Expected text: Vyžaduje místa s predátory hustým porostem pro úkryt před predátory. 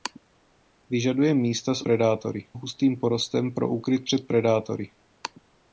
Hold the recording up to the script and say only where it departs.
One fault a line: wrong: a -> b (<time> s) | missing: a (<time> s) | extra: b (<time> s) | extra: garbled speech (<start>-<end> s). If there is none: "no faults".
no faults